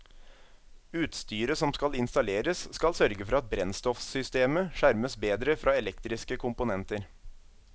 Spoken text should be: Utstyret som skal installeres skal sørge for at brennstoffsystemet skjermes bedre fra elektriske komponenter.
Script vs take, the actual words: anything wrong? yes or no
no